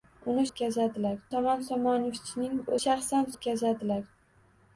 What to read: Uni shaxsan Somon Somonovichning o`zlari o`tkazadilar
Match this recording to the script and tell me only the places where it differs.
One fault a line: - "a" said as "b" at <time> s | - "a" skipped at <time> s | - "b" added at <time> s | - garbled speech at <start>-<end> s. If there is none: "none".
- "shaxsan" said as "o`tkazadilar" at 0.5 s
- "o`zlari" said as "shaxsan" at 2.8 s